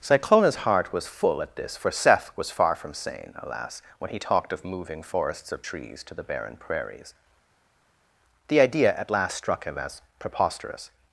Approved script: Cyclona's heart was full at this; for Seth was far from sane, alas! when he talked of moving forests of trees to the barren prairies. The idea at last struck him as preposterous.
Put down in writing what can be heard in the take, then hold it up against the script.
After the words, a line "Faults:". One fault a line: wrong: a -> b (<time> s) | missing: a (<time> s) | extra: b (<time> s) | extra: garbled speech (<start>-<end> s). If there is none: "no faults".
Cyclona's heart was full at this; for Seth was far from sane, alas! when he talked of moving forests of trees to the barren prairies. The idea at last struck him as preposterous.
Faults:
no faults